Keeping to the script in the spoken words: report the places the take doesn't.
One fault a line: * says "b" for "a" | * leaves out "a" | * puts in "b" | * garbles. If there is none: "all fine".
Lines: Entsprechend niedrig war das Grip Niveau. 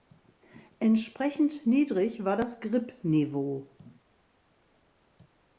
all fine